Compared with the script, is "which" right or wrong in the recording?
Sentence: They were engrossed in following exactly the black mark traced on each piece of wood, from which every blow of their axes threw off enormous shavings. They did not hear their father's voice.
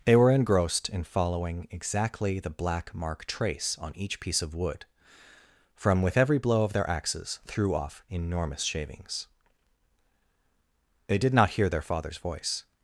wrong